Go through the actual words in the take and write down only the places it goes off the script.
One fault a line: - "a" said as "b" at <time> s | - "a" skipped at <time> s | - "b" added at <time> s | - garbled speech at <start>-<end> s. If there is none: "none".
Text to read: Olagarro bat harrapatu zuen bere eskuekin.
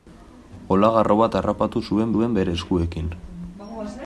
- "zuen" added at 2.1 s